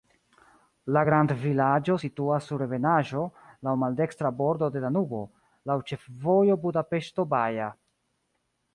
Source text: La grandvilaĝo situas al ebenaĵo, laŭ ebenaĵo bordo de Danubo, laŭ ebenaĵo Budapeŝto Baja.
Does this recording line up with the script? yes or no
no